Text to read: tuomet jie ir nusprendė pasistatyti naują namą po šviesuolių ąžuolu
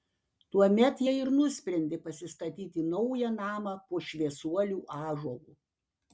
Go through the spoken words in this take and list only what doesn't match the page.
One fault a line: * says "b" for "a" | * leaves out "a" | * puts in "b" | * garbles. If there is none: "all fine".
all fine